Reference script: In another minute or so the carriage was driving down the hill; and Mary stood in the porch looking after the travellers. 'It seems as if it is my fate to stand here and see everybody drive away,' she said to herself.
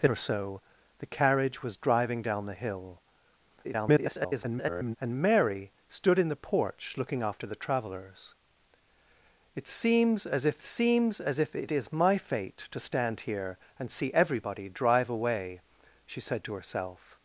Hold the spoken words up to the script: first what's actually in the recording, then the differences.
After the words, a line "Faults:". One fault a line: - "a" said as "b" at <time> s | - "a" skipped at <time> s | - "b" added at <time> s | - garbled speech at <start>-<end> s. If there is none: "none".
In or so the carriage was driving down the hill; [garbled] and Mary stood in the porch looking after the travellers. 'It seems as if seems as if it is my fate to stand here and see everybody drive away,' she said to herself.
Faults:
- "another minute" skipped at 0.1 s
- garbled speech at 3.6-5.0 s
- "seems as if" added at 10.6 s